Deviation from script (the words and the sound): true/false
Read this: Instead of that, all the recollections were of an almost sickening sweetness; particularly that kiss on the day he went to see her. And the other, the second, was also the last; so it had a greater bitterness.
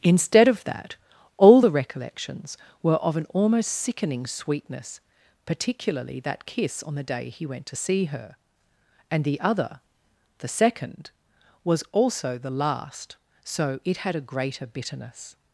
false